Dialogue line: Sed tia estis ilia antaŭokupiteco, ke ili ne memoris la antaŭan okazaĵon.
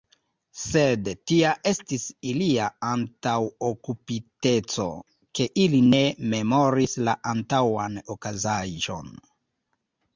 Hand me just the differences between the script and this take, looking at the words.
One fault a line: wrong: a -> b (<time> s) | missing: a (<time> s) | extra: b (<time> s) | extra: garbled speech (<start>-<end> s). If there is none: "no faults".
no faults